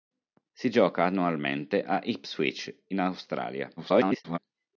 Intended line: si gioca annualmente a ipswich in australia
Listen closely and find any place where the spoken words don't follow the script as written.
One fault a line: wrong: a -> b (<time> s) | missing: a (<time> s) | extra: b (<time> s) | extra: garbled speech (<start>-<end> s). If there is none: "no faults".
extra: garbled speech (3.8-4.4 s)